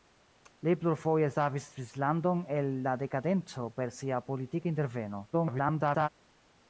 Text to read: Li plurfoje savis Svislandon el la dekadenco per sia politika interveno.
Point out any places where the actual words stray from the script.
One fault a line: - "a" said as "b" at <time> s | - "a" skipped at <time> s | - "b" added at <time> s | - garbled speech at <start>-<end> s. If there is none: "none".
- garbled speech at 5.3-6.1 s